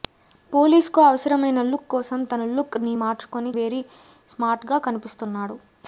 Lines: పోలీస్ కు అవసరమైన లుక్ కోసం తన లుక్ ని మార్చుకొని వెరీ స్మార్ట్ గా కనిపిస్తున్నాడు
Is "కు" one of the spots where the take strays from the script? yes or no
no